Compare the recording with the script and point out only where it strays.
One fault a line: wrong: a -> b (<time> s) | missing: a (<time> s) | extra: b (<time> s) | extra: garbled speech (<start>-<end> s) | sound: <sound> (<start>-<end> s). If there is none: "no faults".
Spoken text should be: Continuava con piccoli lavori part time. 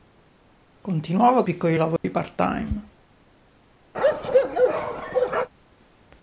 missing: con (1.4 s)
sound: dropout (2.0-2.0 s)
sound: bark (3.9-5.5 s)